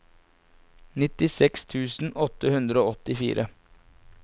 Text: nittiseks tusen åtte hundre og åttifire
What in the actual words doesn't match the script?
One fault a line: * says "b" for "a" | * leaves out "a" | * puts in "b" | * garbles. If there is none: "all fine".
all fine